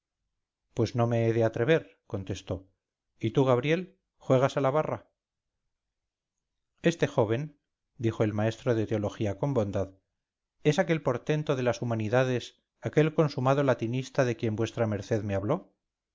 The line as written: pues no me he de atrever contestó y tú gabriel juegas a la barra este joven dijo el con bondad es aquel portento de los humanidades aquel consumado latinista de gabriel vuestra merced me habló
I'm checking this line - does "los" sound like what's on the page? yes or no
no